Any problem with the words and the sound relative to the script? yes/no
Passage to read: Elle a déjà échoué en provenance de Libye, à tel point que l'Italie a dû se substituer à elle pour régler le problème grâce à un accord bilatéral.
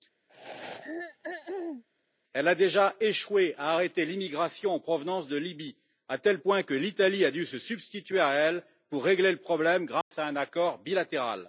yes